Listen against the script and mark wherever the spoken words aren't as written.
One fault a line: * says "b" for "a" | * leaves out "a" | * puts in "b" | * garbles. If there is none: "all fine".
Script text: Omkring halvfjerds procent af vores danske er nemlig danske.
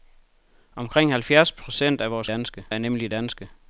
all fine